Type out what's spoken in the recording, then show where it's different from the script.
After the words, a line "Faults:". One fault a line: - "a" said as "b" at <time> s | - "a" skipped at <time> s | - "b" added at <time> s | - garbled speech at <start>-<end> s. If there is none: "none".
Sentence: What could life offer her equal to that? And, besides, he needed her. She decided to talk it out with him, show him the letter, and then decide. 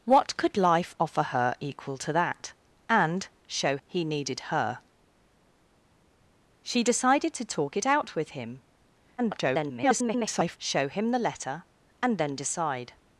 What could life offer her equal to that? And, show, he needed her. She decided to talk it out with him, [garbled] show him the letter, and then decide.
Faults:
- "besides" said as "show" at 3.5 s
- garbled speech at 9.2-10.6 s